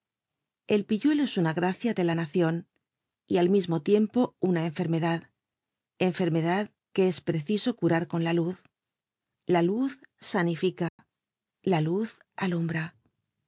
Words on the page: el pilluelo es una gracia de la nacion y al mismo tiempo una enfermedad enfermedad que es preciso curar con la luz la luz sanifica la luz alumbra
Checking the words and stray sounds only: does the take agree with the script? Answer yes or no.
no